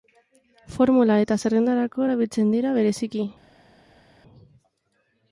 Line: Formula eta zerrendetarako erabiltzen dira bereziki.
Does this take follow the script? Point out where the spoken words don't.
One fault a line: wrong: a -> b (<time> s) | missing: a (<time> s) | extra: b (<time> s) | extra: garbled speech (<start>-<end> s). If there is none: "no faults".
no faults